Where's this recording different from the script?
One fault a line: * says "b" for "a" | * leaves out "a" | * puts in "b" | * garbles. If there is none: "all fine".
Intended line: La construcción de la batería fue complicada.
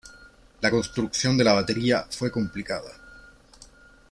all fine